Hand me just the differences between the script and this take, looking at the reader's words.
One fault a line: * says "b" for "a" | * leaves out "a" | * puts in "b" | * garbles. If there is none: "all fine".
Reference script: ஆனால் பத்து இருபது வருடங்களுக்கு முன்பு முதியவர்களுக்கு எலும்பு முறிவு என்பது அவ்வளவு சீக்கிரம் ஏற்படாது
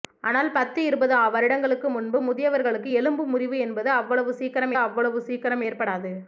* puts in "அவ்வளவு சீக்கிரம்"